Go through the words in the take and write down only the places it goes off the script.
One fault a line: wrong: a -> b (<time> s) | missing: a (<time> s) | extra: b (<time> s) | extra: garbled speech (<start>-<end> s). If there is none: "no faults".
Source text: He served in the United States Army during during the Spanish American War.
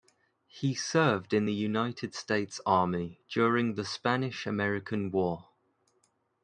missing: during (3.7 s)